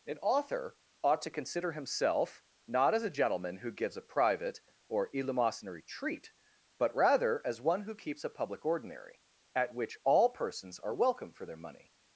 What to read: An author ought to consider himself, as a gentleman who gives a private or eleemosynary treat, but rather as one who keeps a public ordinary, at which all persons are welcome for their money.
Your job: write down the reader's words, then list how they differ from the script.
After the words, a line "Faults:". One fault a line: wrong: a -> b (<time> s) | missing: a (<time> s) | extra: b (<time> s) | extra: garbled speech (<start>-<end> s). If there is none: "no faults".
An author ought to consider himself, not as a gentleman who gives a private or eleemosynary treat, but rather as one who keeps a public ordinary, at which all persons are welcome for their money.
Faults:
extra: not (2.7 s)